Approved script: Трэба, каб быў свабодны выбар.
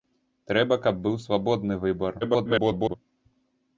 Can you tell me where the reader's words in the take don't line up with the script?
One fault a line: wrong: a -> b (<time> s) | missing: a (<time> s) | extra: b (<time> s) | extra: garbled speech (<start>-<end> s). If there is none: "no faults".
extra: garbled speech (2.2-3.0 s)